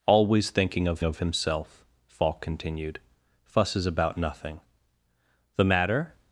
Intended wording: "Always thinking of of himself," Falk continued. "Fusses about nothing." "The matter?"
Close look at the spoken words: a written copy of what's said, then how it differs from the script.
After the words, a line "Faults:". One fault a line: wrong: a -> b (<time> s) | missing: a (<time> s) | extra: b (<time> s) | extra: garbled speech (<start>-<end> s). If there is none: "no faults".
"Always thinking of of himself," Falk continued. "Fusses about nothing." "The matter?"
Faults:
no faults